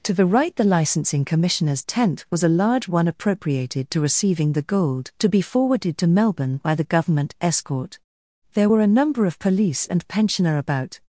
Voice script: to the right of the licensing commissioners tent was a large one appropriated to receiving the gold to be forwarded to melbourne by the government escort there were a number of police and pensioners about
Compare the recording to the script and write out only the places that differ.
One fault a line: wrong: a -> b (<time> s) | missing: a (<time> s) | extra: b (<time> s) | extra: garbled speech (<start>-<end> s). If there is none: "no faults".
missing: of (0.6 s)
wrong: pensioners -> pensioner (10.1 s)